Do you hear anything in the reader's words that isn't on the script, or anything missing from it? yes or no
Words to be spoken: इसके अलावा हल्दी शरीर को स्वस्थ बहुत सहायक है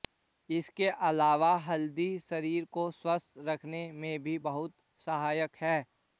yes